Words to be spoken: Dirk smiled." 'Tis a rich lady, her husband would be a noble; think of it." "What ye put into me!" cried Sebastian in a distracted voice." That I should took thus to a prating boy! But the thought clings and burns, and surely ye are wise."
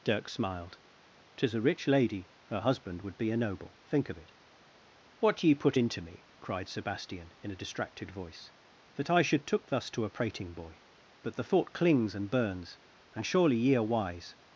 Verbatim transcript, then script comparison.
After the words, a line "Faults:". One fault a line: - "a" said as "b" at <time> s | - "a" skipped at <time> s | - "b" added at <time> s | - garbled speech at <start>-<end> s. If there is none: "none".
Dirk smiled." 'Tis a rich lady, her husband would be a noble; think of it." "What ye put into me!" cried Sebastian in a distracted voice." That I should took thus to a prating boy! But the thought clings and burns, and surely ye are wise."
Faults:
none